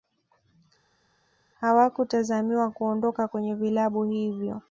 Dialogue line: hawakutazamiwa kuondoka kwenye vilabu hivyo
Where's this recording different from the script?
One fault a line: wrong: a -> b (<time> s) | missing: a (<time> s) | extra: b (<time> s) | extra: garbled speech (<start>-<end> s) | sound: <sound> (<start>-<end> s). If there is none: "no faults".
no faults